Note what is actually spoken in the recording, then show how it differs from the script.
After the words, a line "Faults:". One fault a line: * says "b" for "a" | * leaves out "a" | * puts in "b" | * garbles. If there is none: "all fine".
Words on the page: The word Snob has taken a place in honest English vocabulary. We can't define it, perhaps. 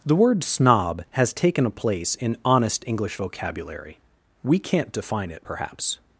The word Snob has taken a place in honest English vocabulary. We can't define it, perhaps.
Faults:
all fine